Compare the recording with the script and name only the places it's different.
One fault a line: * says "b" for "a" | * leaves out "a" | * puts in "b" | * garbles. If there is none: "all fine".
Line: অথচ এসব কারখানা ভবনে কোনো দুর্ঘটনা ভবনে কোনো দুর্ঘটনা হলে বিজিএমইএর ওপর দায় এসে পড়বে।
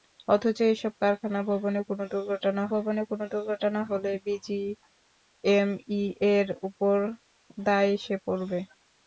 all fine